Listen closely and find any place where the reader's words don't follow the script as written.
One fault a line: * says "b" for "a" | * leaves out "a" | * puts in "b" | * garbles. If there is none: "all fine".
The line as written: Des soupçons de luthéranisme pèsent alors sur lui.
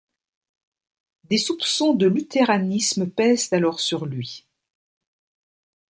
all fine